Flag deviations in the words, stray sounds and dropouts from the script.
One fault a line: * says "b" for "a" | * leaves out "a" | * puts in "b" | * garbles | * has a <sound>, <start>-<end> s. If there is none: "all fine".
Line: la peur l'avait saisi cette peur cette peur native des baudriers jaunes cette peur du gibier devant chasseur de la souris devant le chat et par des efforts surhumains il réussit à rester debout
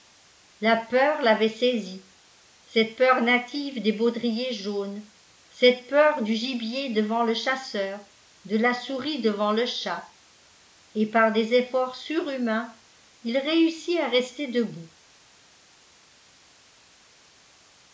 * leaves out "cette peur"
* puts in "le"